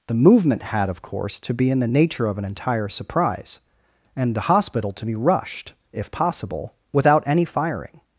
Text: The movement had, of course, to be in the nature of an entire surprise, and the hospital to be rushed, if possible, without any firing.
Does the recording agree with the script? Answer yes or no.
yes